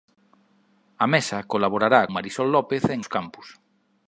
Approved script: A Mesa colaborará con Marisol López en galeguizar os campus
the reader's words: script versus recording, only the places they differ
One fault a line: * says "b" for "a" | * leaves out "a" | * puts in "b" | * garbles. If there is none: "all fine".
* leaves out "con"
* leaves out "galeguizar"